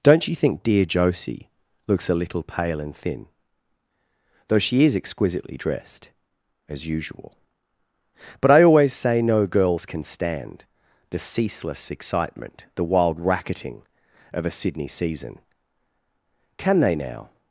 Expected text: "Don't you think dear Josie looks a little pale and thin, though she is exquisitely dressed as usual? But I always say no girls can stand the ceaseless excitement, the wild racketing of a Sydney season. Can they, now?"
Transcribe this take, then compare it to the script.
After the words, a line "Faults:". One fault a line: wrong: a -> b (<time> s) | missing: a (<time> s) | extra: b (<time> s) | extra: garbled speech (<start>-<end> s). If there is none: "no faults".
"Don't you think dear Josie looks a little pale and thin, though she is exquisitely dressed as usual? But I always say no girls can stand the ceaseless excitement, the wild racketing of a Sydney season. Can they, now?"
Faults:
no faults